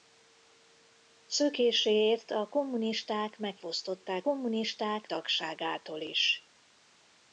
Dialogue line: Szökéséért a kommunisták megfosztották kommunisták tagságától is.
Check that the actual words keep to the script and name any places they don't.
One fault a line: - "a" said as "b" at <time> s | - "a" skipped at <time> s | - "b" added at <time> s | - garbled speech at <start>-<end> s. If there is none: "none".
none